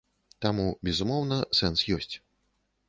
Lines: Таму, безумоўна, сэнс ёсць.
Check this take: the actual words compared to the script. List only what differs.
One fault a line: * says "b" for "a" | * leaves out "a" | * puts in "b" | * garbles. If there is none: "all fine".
all fine